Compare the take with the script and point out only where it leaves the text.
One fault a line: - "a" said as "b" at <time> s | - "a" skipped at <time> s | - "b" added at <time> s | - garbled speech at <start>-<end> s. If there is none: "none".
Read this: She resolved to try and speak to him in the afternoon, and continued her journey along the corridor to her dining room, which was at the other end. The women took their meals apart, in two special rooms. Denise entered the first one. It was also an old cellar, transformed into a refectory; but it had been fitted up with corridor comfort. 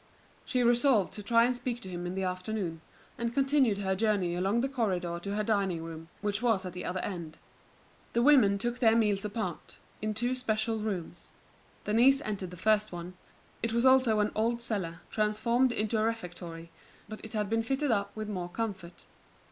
- "corridor" said as "more" at 18.3 s